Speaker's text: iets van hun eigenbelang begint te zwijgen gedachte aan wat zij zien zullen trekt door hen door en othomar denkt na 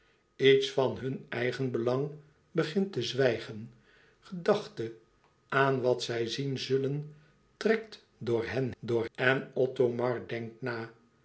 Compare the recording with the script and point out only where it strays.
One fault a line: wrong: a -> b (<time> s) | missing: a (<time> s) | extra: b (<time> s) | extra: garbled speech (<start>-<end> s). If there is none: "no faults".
no faults